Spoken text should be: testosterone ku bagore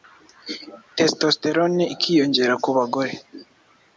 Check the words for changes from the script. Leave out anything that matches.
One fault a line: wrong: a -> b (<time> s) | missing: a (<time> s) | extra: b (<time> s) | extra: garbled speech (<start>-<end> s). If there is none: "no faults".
extra: ikiyongera (1.9 s)